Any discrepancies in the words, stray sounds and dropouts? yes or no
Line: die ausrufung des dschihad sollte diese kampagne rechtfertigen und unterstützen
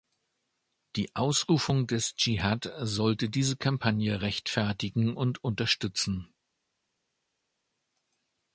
no